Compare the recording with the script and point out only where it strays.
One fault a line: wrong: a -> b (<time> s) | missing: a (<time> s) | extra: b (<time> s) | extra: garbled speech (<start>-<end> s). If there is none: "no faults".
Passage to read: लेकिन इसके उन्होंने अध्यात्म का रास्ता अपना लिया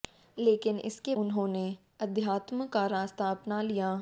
no faults